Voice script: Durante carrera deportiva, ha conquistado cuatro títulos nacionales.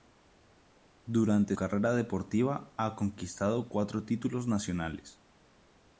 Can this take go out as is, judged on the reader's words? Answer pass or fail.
pass